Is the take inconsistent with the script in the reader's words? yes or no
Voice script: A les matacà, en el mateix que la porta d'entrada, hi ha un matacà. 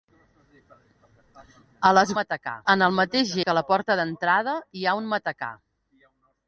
no